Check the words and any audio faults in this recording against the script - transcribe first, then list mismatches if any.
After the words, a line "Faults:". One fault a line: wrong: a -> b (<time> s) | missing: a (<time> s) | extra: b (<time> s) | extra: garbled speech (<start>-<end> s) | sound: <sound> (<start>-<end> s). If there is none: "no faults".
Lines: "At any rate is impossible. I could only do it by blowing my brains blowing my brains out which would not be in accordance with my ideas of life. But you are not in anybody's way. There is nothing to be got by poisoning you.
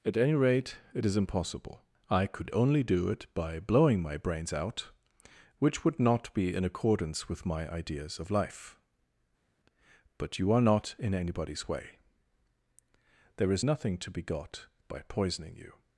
"At any rate it is impossible. I could only do it by blowing my brains out which would not be in accordance with my ideas of life. But you are not in anybody's way. There is nothing to be got by poisoning you.
Faults:
extra: it (0.9 s)
missing: blowing my brains (4.5 s)